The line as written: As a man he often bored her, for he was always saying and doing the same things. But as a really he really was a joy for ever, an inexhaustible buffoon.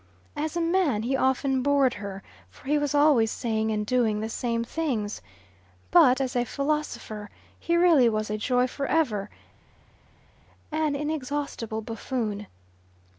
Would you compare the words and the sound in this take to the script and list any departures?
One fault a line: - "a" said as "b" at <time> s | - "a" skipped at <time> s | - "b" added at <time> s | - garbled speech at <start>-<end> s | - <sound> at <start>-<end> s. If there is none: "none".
- "really" said as "philosopher" at 6.5 s